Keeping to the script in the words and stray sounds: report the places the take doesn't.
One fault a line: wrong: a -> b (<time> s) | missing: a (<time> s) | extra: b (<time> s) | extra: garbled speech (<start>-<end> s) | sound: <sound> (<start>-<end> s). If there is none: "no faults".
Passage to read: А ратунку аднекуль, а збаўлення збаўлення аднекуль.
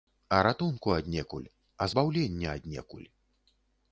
missing: збаўлення (2.5 s)